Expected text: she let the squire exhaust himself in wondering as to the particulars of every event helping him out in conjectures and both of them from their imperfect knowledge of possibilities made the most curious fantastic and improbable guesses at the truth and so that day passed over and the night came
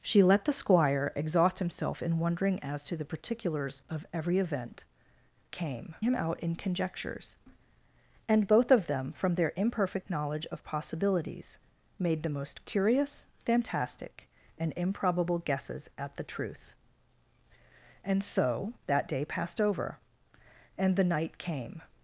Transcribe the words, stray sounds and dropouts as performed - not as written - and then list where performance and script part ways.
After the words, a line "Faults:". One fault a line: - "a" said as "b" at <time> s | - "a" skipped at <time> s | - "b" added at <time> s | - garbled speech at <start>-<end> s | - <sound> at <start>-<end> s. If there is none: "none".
she let the squire exhaust himself in wondering as to the particulars of every event came him out in conjectures and both of them from their imperfect knowledge of possibilities made the most curious fantastic and improbable guesses at the truth and so that day passed over and the night came
Faults:
- "helping" said as "came" at 5.5 s